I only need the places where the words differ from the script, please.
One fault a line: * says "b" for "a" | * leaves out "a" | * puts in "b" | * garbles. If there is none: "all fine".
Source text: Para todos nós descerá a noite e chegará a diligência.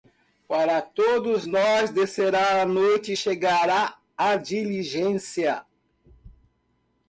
all fine